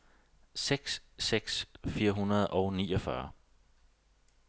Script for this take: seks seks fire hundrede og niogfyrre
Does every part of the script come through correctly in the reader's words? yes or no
yes